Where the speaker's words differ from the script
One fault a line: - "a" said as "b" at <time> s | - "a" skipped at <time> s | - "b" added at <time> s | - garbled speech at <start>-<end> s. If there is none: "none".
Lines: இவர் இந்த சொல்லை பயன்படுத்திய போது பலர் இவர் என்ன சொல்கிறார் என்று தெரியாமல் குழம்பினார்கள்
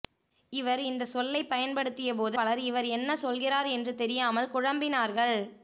none